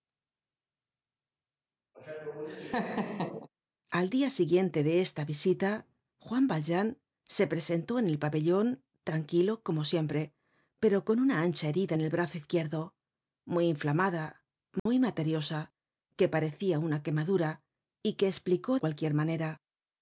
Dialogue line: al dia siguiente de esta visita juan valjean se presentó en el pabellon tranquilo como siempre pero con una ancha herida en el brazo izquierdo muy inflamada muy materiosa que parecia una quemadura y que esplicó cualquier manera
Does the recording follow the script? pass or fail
pass